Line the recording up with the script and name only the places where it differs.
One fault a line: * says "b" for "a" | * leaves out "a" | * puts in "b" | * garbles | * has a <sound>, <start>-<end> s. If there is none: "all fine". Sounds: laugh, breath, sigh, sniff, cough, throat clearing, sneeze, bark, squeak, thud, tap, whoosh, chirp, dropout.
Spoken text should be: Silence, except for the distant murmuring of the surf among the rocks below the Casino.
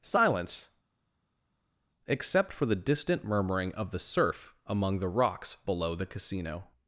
all fine